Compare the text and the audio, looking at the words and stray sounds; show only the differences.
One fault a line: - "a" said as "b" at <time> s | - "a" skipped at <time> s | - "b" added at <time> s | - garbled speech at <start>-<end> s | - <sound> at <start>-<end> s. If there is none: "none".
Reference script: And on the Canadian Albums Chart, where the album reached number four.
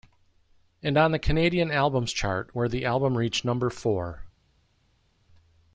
none